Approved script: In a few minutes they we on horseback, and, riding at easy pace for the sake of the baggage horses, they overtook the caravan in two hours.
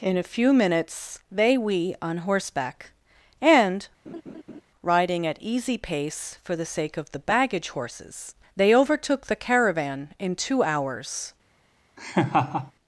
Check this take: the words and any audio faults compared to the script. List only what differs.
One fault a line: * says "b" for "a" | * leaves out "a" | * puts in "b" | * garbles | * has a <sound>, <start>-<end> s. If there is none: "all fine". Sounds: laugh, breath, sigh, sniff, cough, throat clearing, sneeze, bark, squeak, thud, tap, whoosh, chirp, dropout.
* has a laugh, 4.1-4.6 s
* has a laugh, 12.0-12.7 s